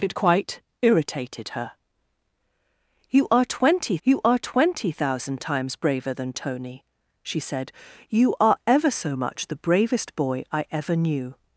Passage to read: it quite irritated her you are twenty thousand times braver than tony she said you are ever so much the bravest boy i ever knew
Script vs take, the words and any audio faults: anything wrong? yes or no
yes